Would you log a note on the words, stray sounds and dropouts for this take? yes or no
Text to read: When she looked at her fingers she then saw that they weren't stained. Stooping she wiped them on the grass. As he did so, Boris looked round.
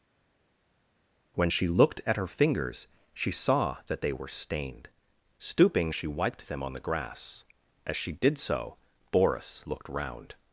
yes